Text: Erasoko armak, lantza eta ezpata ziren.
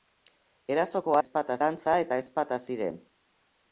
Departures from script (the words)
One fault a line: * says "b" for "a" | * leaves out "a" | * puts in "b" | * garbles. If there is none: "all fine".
* says "ezpata" for "armak"